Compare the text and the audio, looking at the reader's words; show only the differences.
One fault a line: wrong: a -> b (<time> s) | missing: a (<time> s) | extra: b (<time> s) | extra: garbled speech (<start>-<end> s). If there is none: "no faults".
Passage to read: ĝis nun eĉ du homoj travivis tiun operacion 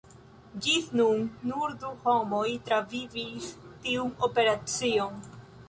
wrong: eĉ -> nur (1.5 s)